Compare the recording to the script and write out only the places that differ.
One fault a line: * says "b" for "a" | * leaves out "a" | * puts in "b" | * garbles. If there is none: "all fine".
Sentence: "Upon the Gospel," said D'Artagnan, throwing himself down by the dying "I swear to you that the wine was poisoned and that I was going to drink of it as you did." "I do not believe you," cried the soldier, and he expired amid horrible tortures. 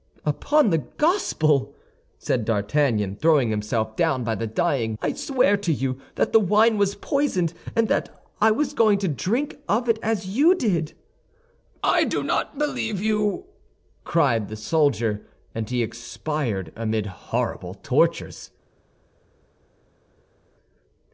all fine